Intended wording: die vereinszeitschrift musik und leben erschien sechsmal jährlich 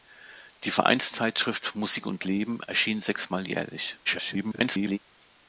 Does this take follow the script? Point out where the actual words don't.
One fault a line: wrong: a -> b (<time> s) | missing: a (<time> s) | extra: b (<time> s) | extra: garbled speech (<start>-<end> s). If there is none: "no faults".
extra: garbled speech (4.1-5.0 s)